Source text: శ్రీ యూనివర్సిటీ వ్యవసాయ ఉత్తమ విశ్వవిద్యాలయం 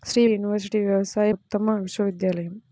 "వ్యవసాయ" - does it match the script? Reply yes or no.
yes